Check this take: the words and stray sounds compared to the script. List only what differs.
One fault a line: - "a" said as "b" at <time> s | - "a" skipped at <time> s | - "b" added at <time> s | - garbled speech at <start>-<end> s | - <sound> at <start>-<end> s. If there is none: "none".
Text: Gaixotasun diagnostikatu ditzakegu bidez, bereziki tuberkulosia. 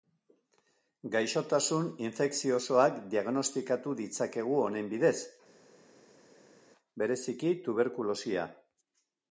- "infekziosoak" added at 2.1 s
- "honen" added at 4.7 s